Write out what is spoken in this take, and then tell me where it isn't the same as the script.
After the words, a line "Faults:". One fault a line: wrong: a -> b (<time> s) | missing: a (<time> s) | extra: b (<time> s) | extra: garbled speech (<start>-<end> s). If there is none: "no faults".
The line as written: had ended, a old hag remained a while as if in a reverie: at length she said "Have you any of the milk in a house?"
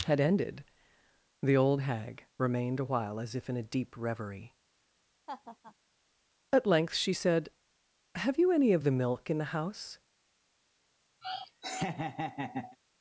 had ended, the old hag remained a while as if in a deep reverie: at length she said "Have you any of the milk in the house?"
Faults:
wrong: a -> the (1.4 s)
extra: deep (3.6 s)
wrong: a -> the (9.4 s)